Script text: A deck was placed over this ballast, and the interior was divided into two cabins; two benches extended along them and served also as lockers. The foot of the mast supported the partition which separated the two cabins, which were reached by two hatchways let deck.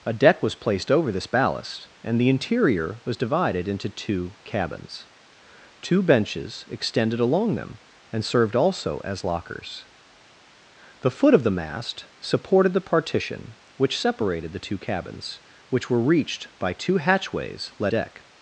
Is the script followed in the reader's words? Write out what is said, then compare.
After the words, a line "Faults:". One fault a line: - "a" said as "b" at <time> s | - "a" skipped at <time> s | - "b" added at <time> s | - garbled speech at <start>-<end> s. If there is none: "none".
A deck was placed over this ballast, and the interior was divided into two cabins; two benches extended along them and served also as lockers. The foot of the mast supported the partition which separated the two cabins, which were reached by two hatchways let deck.
Faults:
none